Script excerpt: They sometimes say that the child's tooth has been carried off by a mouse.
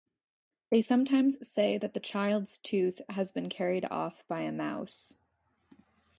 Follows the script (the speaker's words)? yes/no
yes